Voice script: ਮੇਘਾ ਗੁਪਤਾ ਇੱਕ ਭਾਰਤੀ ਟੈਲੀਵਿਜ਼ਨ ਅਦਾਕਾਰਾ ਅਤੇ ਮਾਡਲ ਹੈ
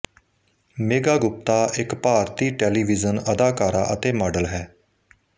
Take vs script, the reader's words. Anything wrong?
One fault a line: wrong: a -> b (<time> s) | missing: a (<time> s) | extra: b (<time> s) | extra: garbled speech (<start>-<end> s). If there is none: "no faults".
no faults